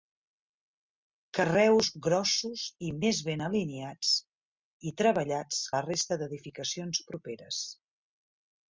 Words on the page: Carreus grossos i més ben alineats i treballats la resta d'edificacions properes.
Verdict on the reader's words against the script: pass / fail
pass